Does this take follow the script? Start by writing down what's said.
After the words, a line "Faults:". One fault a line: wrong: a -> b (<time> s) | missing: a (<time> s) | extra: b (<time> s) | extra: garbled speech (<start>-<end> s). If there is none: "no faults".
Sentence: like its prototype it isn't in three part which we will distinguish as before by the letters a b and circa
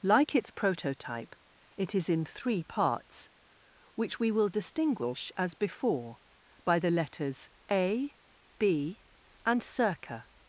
like its prototype it is in three parts which we will distinguish as before by the letters a b and circa
Faults:
wrong: isn't -> is (1.9 s)
wrong: part -> parts (2.6 s)